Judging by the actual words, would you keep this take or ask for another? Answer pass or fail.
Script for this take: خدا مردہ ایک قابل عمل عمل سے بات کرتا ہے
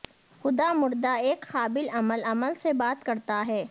pass